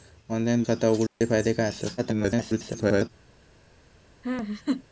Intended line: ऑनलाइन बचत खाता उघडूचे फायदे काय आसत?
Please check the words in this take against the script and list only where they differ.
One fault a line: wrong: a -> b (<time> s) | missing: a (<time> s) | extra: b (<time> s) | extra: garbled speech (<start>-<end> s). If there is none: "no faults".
missing: बचत (0.6 s)
extra: garbled speech (2.0-3.1 s)